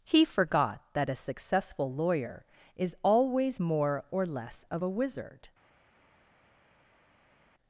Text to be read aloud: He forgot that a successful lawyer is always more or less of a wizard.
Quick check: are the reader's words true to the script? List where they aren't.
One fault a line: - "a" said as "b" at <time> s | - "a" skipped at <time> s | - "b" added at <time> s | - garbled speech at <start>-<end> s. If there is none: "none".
none